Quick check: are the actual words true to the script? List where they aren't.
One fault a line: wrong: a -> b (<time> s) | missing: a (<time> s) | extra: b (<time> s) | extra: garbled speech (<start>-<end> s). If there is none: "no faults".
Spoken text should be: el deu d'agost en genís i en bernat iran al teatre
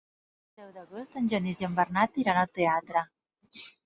no faults